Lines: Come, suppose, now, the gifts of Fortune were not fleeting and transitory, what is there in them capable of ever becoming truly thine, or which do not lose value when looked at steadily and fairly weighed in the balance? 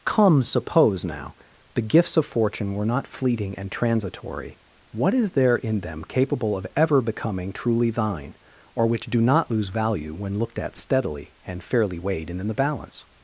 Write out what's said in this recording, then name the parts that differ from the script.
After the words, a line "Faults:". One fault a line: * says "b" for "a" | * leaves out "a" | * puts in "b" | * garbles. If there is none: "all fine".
Come, suppose, now, the gifts of Fortune were not fleeting and transitory, what is there in them capable of ever becoming truly thine, or which do not lose value when looked at steadily and fairly weighed in the balance?
Faults:
all fine